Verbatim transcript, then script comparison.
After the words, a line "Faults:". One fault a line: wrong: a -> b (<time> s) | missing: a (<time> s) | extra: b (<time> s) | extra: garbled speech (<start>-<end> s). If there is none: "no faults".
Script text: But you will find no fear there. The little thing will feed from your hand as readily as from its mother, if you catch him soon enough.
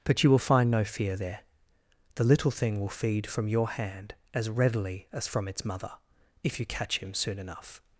But you will find no fear there. The little thing will feed from your hand as readily as from its mother, if you catch him soon enough.
Faults:
no faults